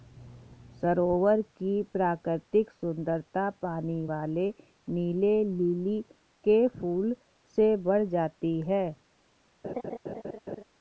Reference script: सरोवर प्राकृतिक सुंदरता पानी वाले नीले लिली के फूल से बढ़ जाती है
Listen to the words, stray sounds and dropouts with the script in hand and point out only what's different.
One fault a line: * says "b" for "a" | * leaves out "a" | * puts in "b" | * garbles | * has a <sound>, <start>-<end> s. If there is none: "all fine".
* puts in "की"
* has a laugh, 9.6-10.6 s